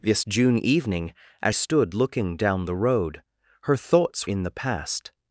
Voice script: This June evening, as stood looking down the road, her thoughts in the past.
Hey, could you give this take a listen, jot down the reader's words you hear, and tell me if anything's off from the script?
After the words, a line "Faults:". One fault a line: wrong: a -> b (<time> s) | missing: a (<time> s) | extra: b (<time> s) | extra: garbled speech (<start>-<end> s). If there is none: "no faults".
This June evening, as stood looking down the road, her thoughts in the past.
Faults:
no faults